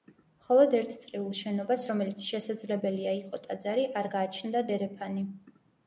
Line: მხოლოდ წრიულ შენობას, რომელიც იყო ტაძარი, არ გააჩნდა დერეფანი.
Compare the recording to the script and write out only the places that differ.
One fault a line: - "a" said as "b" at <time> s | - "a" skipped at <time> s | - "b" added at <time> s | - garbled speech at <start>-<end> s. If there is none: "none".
- "ერთ" added at 0.8 s
- "შესაძლებელია" added at 2.3 s